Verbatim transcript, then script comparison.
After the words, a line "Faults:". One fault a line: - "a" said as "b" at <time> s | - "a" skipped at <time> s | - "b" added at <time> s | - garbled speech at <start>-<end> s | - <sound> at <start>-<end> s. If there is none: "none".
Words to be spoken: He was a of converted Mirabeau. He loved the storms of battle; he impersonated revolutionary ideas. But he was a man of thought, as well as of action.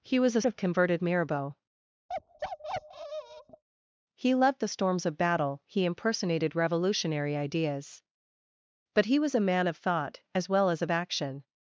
He was a of converted Mirabeau. He loved the storms of battle; he impersonated revolutionary ideas. But he was a man of thought, as well as of action.
Faults:
- bark at 2.1-3.6 s